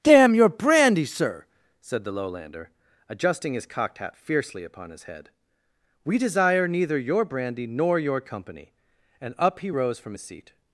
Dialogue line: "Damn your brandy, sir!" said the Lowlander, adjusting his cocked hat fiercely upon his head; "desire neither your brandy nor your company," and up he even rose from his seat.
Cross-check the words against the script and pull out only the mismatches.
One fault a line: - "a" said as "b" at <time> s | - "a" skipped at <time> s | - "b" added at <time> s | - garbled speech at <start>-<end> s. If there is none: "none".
- "we" added at 6.0 s
- "even" skipped at 9.7 s